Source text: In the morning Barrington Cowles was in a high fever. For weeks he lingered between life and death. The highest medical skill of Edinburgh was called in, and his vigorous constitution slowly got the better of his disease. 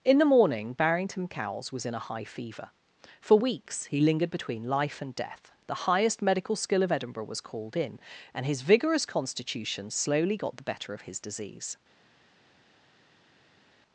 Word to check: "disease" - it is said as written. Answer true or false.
true